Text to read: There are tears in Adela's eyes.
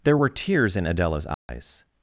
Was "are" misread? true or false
true